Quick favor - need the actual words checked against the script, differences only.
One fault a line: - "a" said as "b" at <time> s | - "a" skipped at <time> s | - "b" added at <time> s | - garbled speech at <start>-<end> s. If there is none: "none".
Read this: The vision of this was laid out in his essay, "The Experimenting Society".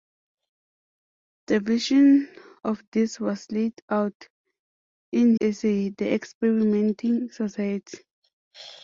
- "his" skipped at 5.4 s